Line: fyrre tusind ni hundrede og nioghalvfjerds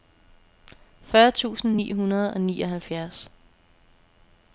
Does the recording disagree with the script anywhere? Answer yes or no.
no